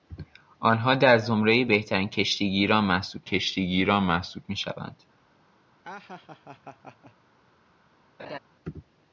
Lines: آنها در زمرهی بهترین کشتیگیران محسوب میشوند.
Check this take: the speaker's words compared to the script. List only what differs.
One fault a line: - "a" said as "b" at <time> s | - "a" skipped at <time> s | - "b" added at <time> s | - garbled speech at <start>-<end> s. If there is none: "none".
- "کشتیگیران محسوب" added at 3.2 s